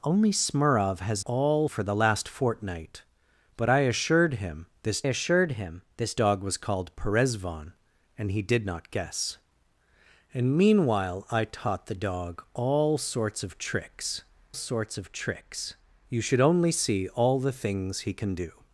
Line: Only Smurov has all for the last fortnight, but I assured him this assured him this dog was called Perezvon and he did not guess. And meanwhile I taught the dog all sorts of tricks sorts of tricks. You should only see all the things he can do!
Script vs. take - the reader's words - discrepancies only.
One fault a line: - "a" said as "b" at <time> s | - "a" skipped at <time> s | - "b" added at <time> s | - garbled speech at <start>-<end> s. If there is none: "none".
none